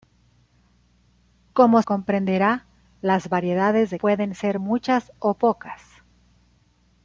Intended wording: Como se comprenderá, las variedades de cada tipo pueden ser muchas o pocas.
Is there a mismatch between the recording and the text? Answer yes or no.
yes